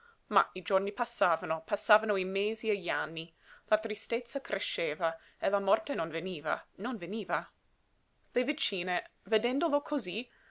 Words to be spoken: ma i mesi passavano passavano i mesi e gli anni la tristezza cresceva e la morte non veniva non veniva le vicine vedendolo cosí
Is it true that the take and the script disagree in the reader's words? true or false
true